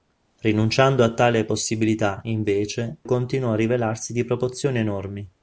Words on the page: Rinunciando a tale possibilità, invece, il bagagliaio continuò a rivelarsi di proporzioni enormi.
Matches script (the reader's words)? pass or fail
fail